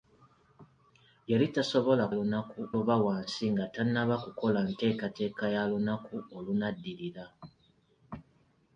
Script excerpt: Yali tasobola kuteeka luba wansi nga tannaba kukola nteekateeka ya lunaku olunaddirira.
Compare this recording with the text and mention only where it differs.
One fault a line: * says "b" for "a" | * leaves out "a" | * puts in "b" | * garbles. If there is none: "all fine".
* says "lunaku" for "kuteeka"